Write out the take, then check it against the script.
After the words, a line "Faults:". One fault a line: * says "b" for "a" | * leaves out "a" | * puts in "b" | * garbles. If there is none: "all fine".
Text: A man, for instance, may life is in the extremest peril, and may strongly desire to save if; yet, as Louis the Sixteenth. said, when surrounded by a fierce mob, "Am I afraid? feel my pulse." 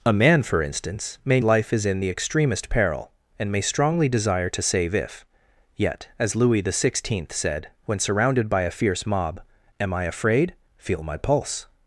A man, for instance, may life is in the extremest peril, and may strongly desire to save if; yet, as Louis the Sixteenth. said, when surrounded by a fierce mob, "Am I afraid? feel my pulse."
Faults:
all fine